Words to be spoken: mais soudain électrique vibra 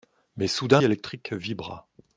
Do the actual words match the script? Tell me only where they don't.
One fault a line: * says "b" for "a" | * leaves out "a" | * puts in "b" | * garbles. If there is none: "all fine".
all fine